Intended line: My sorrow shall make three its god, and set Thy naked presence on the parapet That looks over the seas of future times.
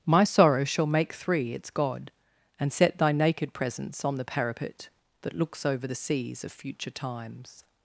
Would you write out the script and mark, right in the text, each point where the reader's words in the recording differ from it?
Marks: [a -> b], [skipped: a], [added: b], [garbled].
My sorrow shall make three its god, and set Thy naked presence on the parapet That looks over the seas of future times.